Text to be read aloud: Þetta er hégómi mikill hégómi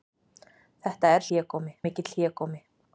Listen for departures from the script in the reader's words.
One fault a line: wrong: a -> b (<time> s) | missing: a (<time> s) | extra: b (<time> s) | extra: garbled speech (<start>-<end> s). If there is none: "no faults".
no faults